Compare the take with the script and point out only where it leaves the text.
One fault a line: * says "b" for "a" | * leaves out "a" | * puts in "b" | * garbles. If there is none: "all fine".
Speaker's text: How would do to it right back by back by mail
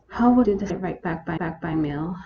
all fine